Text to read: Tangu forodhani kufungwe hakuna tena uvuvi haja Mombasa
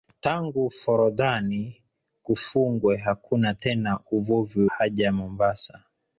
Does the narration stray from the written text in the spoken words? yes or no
no